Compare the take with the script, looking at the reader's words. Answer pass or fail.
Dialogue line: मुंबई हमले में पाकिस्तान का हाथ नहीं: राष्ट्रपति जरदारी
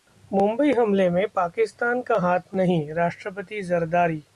pass